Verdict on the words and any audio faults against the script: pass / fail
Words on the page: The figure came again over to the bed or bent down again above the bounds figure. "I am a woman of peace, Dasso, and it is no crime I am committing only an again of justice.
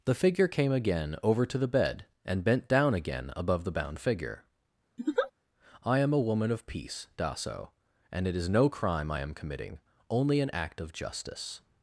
fail